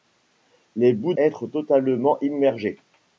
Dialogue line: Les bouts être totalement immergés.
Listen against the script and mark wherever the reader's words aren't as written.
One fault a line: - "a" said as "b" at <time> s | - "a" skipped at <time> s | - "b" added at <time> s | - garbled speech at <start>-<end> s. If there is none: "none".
none